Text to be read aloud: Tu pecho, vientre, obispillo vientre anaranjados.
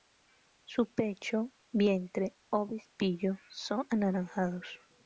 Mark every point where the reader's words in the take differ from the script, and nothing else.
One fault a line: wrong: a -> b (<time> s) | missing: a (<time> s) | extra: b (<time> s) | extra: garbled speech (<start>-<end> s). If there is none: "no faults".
wrong: Tu -> Su (0.7 s)
wrong: vientre -> son (3.5 s)